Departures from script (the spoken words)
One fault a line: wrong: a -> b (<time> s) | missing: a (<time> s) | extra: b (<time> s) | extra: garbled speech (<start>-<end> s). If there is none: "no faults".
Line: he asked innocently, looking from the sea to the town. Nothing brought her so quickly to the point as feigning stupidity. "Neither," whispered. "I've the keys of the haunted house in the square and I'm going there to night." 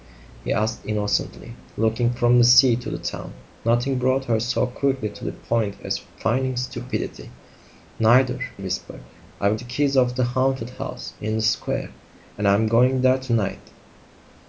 no faults